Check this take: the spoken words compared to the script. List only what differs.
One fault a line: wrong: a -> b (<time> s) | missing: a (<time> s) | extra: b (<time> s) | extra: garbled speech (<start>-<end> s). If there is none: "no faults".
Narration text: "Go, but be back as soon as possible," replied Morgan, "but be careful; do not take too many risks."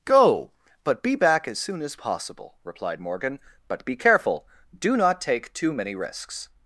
no faults